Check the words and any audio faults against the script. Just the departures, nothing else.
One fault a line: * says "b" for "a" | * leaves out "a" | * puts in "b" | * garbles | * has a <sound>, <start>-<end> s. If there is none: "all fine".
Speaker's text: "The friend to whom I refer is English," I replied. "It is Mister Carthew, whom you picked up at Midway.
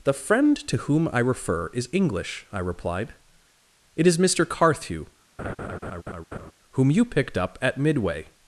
* has a laugh, 5.4-6.5 s